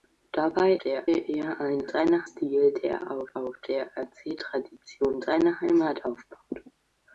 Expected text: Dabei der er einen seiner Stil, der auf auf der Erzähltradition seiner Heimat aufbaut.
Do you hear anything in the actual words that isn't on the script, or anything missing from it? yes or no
no